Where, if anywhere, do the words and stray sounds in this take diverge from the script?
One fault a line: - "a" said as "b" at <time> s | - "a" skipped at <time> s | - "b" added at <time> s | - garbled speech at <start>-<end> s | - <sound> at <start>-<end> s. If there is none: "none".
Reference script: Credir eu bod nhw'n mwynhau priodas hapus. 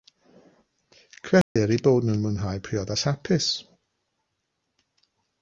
- dropout at 1.4-1.6 s